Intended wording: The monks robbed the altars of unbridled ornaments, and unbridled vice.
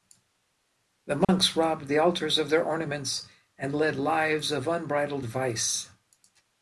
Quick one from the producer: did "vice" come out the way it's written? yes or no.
yes